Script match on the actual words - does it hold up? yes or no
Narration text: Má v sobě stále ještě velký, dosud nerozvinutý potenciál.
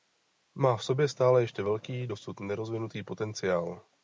yes